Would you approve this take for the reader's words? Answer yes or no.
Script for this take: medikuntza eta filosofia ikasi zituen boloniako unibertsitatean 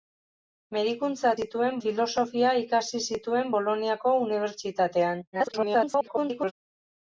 no